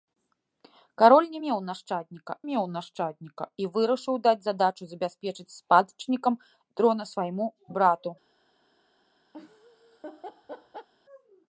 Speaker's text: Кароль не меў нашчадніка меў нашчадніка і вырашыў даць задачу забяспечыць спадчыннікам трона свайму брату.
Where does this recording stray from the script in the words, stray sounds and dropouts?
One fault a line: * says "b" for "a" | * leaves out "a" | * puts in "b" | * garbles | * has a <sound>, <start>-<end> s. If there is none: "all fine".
* has a laugh, 9.3-10.9 s